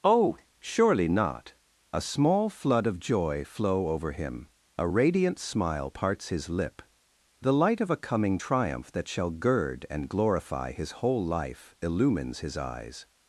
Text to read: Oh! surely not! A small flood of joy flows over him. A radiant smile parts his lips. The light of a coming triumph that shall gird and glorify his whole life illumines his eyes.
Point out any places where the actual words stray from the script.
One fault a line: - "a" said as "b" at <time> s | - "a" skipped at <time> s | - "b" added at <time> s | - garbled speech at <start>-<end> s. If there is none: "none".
- "flows" said as "flow" at 3.5 s
- "lips" said as "lip" at 6.5 s